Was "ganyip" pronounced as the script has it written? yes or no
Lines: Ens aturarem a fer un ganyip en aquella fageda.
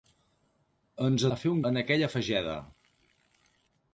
no